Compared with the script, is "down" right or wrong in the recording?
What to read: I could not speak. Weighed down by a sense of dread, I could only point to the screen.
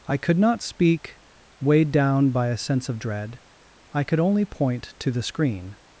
right